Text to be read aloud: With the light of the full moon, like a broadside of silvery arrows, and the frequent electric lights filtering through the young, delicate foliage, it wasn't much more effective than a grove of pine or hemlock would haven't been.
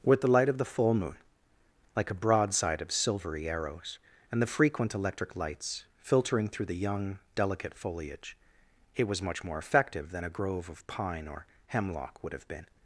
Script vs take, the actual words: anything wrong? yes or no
yes